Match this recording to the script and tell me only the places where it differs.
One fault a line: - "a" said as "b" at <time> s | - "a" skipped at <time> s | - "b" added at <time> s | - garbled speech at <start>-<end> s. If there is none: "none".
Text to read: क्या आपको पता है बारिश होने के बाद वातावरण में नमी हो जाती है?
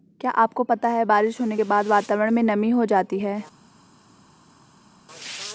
none